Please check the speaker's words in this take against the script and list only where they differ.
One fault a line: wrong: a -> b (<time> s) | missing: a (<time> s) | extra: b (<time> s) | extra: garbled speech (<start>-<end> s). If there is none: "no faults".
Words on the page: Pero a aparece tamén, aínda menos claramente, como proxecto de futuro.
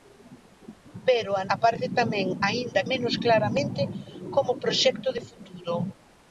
no faults